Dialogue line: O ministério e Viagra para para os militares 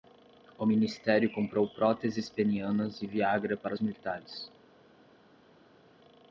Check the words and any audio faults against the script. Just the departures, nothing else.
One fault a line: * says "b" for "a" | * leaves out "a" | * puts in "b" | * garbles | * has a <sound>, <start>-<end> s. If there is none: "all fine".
* puts in "comprou próteses penianas"
* leaves out "para"